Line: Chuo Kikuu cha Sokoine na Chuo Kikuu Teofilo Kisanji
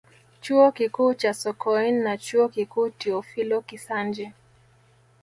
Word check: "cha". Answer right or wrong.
right